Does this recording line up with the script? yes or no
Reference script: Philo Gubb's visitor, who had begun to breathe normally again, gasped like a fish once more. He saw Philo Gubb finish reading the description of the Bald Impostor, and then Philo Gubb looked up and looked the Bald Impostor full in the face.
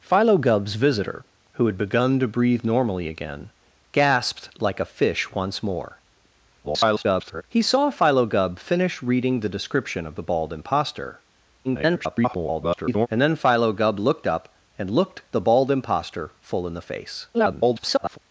no